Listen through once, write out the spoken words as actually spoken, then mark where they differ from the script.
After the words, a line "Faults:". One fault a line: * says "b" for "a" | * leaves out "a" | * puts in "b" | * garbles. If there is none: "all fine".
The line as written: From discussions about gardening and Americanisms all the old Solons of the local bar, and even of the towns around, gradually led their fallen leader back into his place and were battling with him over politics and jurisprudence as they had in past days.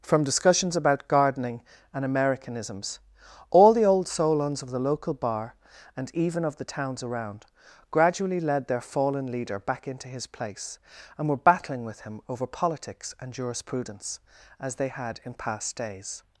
From discussions about gardening and Americanisms all the old Solons of the local bar, and even of the towns around, gradually led their fallen leader back into his place and were battling with him over politics and jurisprudence as they had in past days.
Faults:
all fine